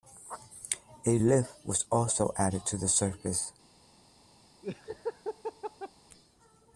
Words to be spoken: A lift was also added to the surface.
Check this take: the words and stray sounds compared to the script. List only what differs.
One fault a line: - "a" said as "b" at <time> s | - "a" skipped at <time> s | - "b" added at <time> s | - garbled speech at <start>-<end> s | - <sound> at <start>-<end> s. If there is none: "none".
- laugh at 4.6-5.9 s